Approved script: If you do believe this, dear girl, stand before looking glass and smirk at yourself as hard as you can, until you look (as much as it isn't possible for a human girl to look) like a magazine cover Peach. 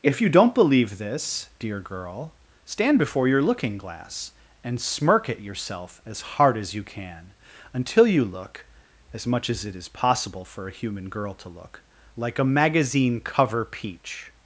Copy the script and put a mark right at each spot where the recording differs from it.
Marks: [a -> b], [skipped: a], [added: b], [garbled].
If you [do -> don't] believe this, dear girl, stand before [added: your] looking glass and smirk at yourself as hard as you can, until you look (as much as it [isn't -> is] possible for a human girl to look) like a magazine cover Peach.